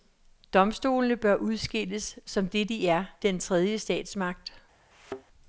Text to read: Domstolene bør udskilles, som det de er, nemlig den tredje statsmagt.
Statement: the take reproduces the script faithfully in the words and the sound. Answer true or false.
false